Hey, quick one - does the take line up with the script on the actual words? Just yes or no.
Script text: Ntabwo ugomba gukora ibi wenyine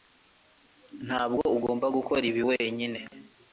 yes